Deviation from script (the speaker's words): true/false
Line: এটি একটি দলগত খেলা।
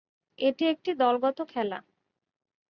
false